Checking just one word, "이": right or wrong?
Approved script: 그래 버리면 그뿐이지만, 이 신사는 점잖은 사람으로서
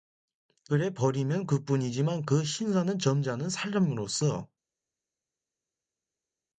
wrong